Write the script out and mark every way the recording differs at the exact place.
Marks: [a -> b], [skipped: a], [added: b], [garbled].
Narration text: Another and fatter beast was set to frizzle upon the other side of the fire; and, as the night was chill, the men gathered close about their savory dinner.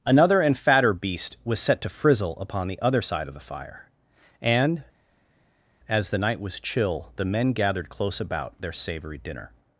Another and fatter beast was set to frizzle upon the other side of the fire; and, as the night was chill, the men gathered close about their savory dinner.